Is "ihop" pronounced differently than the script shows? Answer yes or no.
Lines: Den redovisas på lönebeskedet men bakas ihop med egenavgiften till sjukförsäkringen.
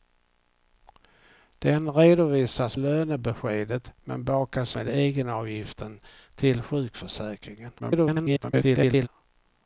yes